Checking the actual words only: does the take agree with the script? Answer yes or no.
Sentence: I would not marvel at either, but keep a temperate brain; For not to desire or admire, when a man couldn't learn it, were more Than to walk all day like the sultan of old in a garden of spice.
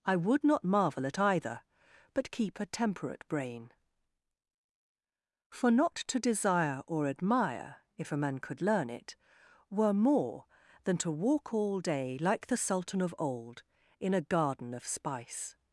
no